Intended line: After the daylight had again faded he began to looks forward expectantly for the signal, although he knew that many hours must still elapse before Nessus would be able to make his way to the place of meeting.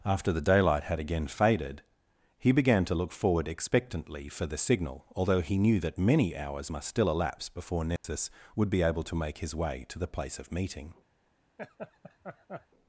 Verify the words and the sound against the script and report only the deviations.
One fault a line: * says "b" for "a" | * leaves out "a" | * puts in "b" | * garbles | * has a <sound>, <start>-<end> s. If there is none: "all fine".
* says "look" for "looks"
* has a dropout, 8.0-8.0 s
* has a laugh, 11.6-12.7 s